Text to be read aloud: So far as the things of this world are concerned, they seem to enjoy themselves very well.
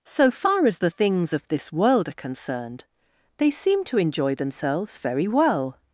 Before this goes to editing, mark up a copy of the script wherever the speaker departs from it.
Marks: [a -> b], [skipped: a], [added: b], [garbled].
So far as the things of this world are concerned, they seem to enjoy themselves very well.